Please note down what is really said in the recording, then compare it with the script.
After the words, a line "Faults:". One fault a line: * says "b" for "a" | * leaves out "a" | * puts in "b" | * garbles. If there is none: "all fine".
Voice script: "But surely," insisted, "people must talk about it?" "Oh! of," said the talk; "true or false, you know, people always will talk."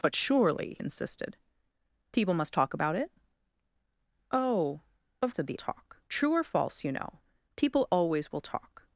"But surely," insisted, "people must talk about it?" "Oh! of," said the talk; "true or false, you know, people always will talk."
Faults:
all fine